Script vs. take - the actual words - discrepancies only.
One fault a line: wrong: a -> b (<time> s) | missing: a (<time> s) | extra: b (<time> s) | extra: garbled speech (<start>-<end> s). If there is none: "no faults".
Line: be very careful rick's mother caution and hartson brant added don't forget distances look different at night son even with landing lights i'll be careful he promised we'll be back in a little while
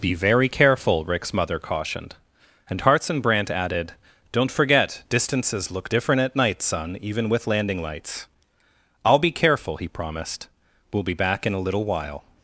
wrong: caution -> cautioned (1.6 s)